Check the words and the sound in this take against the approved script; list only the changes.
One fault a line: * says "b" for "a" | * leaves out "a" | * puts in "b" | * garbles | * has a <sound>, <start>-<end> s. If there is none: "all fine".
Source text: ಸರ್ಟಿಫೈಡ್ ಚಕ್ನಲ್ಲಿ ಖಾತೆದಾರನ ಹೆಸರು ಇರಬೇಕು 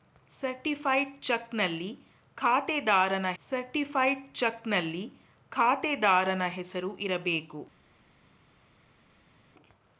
* puts in "ಸರ್ಟಿಫೈಡ್ ಚಕ್ನಲ್ಲಿ ಖಾತೆದಾರನ"